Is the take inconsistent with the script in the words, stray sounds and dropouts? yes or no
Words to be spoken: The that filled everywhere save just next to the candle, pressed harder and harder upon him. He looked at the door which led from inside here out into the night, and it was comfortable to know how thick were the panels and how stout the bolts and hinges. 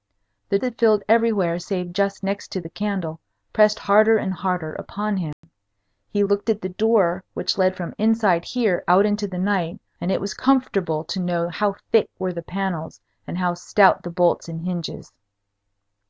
yes